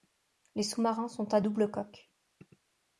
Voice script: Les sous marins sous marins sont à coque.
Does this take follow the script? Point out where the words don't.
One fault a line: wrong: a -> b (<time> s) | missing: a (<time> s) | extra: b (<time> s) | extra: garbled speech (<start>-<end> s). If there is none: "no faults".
missing: sous marins (1.1 s)
extra: double (1.4 s)